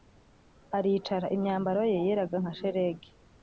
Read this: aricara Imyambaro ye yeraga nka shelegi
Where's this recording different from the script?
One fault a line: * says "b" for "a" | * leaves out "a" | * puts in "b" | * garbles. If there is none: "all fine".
all fine